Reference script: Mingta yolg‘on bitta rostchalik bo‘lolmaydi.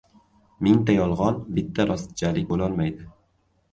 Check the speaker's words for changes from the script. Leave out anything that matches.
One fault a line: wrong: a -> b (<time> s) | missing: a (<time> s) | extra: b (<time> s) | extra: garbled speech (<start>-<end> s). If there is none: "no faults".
no faults